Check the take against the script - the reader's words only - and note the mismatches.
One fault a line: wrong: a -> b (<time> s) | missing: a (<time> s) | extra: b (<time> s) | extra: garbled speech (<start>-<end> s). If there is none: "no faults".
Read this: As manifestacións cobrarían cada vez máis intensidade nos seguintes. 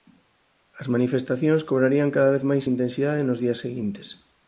extra: días (3.4 s)